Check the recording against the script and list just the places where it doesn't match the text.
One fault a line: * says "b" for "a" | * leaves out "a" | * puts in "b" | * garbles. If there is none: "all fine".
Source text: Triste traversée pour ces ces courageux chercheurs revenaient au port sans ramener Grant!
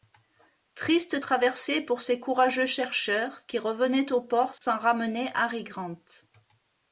* leaves out "ces"
* puts in "qui"
* puts in "Harry"